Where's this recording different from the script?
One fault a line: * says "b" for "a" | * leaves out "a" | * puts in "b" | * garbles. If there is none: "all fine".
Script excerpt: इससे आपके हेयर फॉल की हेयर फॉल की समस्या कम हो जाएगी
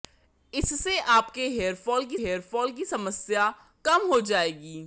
all fine